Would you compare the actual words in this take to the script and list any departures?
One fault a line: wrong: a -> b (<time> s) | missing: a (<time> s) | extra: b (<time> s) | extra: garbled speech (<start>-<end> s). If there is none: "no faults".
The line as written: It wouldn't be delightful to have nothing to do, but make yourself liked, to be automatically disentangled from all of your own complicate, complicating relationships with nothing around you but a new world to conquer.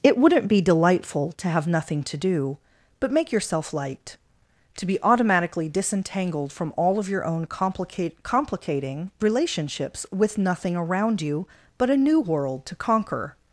no faults